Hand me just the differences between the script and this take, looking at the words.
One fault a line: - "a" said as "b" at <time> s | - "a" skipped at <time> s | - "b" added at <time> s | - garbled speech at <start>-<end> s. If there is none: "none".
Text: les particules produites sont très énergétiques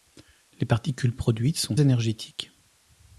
- "très" skipped at 1.8 s